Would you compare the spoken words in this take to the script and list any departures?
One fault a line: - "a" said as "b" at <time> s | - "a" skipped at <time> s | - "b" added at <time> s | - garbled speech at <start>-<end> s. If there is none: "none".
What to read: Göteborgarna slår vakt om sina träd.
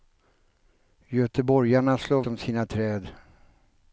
- "vakt" skipped at 2.2 s